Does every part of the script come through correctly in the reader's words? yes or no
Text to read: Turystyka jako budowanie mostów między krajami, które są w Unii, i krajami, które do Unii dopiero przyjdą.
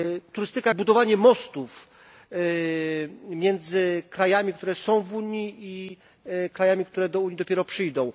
no